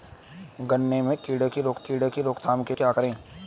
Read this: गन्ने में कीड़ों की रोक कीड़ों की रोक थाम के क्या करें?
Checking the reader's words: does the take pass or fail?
pass